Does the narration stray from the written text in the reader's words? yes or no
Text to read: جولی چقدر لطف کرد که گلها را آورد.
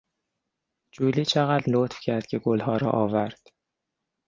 no